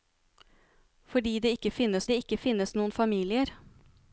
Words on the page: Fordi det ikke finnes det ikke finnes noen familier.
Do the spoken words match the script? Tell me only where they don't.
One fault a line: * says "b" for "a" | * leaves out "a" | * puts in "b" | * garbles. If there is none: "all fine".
all fine